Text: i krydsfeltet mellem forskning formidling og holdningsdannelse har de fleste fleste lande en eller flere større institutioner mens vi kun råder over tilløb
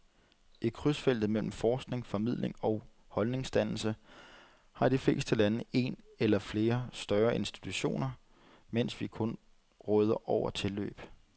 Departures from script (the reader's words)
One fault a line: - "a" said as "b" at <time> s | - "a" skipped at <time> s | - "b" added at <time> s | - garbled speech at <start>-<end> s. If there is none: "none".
- "fleste" skipped at 5.3 s